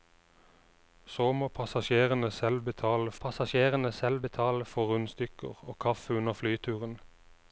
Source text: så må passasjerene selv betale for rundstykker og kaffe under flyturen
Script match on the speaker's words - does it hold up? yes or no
no